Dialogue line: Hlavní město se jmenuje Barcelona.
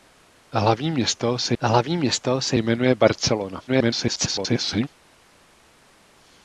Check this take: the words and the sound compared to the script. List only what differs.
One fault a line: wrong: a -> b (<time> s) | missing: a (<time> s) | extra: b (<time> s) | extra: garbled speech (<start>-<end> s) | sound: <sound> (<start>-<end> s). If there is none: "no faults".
extra: hlavní město se (1.6 s)
extra: garbled speech (3.7-4.9 s)